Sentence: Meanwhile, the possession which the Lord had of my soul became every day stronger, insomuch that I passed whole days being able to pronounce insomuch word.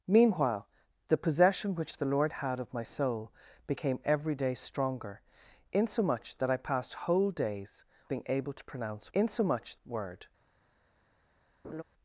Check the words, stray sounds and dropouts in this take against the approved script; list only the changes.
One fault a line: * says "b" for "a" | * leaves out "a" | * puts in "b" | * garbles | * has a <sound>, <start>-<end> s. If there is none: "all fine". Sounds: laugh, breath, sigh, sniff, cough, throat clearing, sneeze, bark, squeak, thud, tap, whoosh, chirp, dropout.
* has a laugh, 11.6-11.8 s